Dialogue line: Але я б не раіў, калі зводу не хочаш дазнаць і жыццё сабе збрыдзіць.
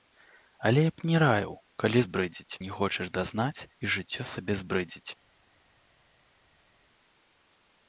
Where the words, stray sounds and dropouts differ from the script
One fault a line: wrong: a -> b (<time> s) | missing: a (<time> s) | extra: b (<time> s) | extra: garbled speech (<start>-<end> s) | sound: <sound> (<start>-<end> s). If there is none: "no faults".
wrong: зводу -> збрыдзіць (2.1 s)